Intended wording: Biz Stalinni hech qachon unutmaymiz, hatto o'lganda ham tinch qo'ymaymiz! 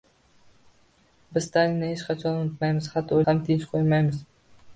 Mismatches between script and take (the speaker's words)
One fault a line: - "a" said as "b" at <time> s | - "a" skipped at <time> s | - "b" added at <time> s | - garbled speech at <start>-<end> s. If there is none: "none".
- "o'lganda" skipped at 3.2 s